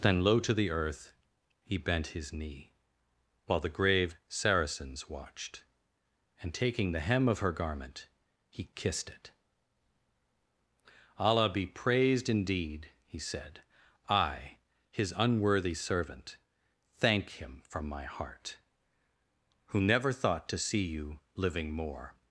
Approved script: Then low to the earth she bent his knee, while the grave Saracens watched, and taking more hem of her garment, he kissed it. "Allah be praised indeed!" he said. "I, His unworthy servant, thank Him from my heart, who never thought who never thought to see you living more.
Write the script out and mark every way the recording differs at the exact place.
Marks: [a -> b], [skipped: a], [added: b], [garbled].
Then low to the earth [she -> he] bent his knee, while the grave Saracens watched, and taking [more -> the] hem of her garment, he kissed it. "Allah be praised indeed!" he said. "I, His unworthy servant, thank Him from my heart, who never thought [skipped: who never thought] to see you living more.